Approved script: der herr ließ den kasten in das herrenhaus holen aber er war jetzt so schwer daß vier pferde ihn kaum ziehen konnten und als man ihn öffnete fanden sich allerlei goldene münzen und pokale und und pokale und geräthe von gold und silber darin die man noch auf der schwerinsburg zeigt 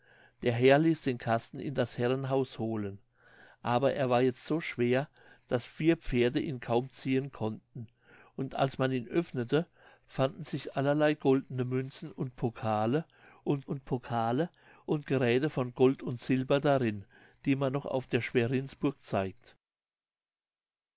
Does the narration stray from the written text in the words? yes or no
no